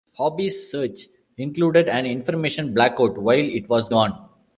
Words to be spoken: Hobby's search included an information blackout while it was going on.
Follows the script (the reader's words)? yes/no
no